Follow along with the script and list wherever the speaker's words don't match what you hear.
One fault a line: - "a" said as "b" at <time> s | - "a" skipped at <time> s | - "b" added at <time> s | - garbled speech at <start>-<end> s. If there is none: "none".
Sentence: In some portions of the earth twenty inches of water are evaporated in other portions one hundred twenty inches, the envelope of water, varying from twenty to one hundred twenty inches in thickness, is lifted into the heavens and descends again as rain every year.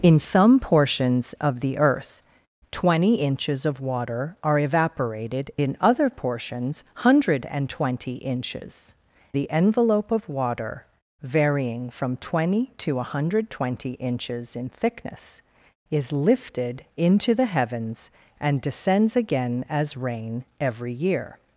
none